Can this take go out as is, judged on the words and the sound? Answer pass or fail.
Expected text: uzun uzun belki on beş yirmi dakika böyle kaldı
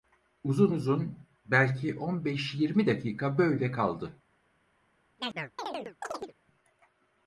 fail